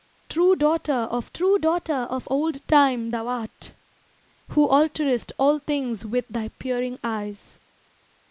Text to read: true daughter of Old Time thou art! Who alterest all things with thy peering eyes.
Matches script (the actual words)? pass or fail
fail